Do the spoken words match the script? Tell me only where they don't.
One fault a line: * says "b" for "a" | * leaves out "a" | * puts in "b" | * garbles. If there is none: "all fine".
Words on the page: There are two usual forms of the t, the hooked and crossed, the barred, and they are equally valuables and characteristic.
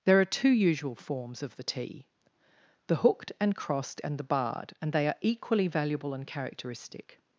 * puts in "and"
* says "valuable" for "valuables"